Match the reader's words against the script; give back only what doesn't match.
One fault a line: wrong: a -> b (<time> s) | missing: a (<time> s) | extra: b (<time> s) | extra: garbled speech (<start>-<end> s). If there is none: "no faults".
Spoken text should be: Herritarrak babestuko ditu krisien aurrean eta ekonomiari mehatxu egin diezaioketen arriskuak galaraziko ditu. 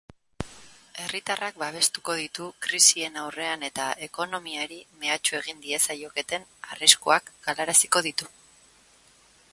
no faults